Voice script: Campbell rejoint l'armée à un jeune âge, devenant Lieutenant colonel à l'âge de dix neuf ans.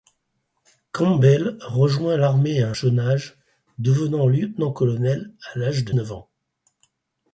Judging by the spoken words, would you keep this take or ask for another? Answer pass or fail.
fail